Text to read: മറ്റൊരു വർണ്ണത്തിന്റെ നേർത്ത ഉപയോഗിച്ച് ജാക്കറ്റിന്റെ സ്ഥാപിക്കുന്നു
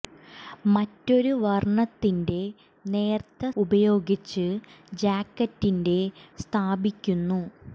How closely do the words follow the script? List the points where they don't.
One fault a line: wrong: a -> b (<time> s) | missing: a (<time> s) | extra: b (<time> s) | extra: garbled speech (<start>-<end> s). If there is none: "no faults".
no faults